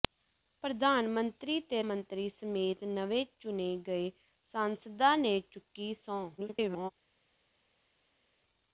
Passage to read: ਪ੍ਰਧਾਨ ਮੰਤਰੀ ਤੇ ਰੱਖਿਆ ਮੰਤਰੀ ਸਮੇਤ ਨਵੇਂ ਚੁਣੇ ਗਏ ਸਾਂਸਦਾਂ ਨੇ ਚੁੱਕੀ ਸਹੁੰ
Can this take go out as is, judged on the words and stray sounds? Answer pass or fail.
fail